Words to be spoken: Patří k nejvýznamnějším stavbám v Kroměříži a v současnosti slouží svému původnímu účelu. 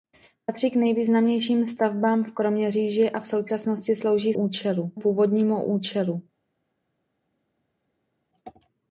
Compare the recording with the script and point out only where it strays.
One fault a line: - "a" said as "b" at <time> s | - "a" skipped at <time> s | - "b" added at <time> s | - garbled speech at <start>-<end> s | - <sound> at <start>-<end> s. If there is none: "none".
- "svému" said as "účelu" at 4.3 s